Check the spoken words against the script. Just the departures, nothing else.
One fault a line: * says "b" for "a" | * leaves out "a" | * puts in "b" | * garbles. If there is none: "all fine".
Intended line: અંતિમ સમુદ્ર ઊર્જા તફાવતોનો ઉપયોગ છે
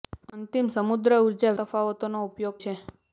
all fine